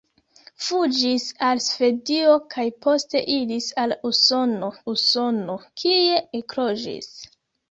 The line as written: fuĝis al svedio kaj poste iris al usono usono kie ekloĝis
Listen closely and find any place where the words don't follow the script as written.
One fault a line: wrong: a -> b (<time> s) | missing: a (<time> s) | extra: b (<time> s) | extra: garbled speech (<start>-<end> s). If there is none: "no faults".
no faults